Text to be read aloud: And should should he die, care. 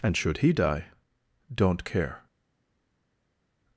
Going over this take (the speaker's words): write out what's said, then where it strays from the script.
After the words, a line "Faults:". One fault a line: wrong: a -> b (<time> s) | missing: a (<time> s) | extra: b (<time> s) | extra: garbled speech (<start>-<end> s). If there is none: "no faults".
And should he die, don't care.
Faults:
missing: should (0.4 s)
extra: don't (1.5 s)